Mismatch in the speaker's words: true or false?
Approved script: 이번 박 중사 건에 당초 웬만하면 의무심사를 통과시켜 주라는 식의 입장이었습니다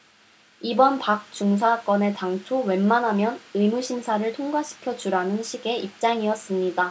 false